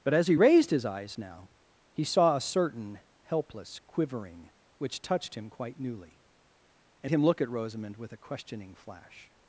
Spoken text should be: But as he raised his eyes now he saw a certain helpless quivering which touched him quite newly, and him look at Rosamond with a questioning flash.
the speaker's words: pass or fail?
pass